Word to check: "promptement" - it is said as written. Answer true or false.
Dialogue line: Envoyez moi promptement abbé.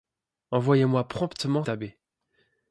true